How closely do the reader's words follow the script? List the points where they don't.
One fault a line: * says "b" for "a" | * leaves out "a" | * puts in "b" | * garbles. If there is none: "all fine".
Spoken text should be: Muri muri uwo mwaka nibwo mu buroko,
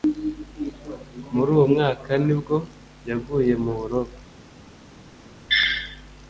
* leaves out "muri"
* puts in "yaguye"